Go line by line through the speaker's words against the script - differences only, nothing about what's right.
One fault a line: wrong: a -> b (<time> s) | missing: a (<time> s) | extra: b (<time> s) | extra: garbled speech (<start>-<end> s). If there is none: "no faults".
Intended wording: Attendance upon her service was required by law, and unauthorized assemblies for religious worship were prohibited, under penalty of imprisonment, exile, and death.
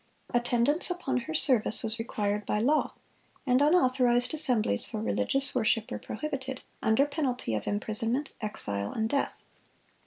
no faults